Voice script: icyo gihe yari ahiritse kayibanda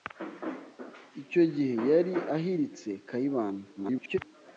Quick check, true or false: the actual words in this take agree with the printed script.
false